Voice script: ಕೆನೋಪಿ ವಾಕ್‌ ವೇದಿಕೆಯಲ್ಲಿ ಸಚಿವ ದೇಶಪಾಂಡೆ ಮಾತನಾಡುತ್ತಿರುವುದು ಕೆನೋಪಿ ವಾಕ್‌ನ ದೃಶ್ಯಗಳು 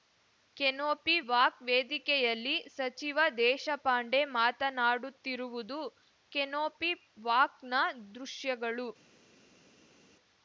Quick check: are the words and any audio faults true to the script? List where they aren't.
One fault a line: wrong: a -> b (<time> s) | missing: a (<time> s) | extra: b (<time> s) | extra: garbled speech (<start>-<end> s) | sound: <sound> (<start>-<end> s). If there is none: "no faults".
no faults